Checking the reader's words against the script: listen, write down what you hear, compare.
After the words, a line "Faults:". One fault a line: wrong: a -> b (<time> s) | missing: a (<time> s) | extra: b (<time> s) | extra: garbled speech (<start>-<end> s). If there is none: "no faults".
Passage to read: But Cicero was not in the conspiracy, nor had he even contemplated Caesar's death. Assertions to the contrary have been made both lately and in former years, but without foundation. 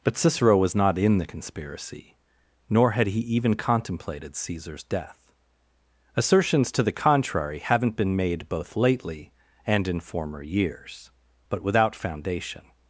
But Cicero was not in the conspiracy, nor had he even contemplated Caesar's death. Assertions to the contrary haven't been made both lately and in former years, but without foundation.
Faults:
wrong: have -> haven't (7.6 s)